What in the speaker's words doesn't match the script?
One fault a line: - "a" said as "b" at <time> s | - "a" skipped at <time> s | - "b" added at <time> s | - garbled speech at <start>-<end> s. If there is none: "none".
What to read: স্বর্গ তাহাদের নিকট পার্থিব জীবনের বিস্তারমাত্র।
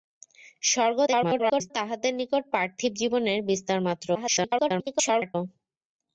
- garbled speech at 1.1-1.7 s
- garbled speech at 4.1-5.4 s